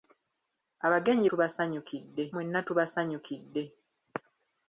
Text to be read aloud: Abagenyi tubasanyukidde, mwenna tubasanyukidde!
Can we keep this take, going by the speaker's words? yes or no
yes